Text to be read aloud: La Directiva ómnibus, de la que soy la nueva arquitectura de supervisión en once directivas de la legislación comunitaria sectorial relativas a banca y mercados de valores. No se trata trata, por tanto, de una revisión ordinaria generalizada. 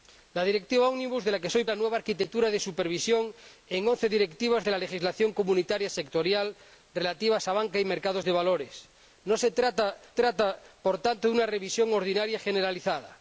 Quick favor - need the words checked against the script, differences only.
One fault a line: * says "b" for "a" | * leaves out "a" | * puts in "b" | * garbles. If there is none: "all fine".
all fine